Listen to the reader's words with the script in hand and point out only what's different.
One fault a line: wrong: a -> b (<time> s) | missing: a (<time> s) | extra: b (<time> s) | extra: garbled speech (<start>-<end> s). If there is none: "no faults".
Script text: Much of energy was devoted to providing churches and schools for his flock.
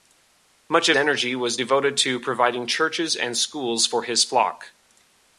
no faults